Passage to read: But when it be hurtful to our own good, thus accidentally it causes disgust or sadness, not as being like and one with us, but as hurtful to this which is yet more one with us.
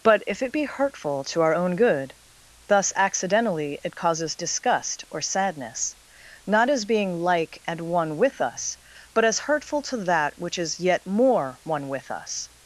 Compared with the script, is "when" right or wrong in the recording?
wrong